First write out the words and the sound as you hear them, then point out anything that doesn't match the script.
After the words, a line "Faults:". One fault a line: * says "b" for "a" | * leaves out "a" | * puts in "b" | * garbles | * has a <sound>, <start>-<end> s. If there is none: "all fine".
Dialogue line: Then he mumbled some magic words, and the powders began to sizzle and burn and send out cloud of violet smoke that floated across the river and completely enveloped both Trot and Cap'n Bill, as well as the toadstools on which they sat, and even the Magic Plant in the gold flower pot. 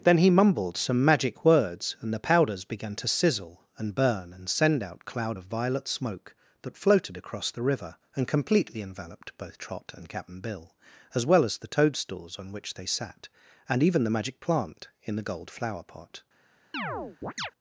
Then he mumbled some magic words, and the powders began to sizzle and burn and send out cloud of violet smoke that floated across the river and completely enveloped both Trot and Cap'n Bill, as well as the toadstools on which they sat, and even the Magic Plant in the gold flower pot.
Faults:
* has a chirp, 16.7-17.5 s